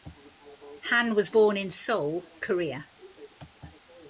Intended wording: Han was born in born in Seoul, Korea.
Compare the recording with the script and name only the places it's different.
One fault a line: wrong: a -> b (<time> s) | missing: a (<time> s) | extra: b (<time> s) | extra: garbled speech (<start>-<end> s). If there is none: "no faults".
missing: born in (1.7 s)